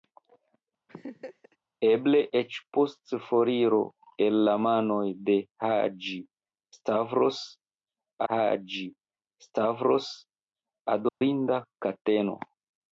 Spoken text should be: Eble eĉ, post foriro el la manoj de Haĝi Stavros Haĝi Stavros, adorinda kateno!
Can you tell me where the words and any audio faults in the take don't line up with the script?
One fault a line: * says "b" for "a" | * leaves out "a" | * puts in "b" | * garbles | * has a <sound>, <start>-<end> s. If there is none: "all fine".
* has a laugh, 0.9-1.6 s
* has a dropout, 11.1-11.2 s